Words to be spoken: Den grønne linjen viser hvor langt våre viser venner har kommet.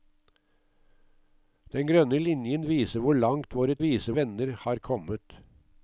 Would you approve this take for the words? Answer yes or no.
yes